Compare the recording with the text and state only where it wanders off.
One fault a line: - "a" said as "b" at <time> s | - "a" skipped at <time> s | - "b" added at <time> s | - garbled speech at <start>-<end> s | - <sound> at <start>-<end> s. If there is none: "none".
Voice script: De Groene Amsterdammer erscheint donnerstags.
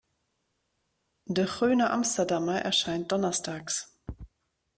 none